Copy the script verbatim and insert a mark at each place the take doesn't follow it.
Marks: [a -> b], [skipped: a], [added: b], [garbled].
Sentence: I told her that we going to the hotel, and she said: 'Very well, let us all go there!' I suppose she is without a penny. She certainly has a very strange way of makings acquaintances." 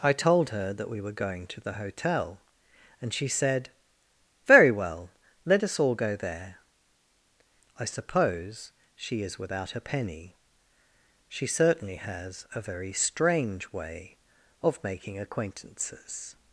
I told her that we [added: were] going to the hotel, and she said: 'Very well, let us all go there!' I suppose she is without a penny. She certainly has a very strange way of [makings -> making] acquaintances."